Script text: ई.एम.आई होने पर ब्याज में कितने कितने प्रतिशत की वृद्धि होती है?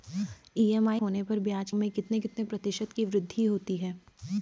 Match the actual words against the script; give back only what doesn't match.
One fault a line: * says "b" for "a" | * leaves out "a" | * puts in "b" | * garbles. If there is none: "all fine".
all fine